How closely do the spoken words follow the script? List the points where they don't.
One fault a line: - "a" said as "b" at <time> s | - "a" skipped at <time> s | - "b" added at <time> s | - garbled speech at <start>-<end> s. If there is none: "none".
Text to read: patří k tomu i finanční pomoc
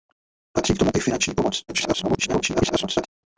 - garbled speech at 1.7-3.1 s